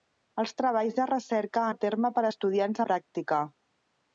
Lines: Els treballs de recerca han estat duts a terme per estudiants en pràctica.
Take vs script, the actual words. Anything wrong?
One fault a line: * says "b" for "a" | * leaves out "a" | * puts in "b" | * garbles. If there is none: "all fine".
* leaves out "han estat duts"
* leaves out "en"